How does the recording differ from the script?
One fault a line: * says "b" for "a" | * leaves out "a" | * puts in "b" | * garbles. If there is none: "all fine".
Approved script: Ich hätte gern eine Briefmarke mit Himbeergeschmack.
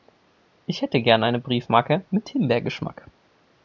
all fine